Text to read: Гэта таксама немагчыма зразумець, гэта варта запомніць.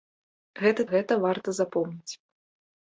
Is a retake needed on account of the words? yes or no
yes